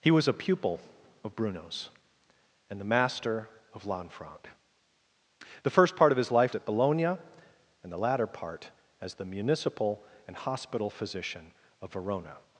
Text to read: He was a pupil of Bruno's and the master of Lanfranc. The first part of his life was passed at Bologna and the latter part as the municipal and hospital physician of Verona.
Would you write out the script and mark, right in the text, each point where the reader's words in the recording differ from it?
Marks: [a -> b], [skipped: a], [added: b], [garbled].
He was a pupil of Bruno's and the master of Lanfranc. The first part of his life [skipped: was passed] at Bologna and the latter part as the municipal and hospital physician of Verona.